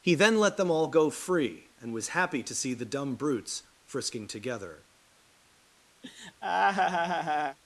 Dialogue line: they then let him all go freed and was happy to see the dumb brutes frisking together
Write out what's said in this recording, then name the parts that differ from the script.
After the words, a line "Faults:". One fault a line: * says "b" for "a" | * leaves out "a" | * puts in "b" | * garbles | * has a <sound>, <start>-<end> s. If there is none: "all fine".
he then let them all go free and was happy to see the dumb brutes frisking together
Faults:
* says "he" for "they"
* says "them" for "him"
* says "free" for "freed"
* has a laugh, 6.0-7.6 s